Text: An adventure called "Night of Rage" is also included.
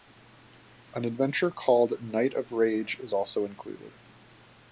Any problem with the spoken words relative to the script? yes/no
no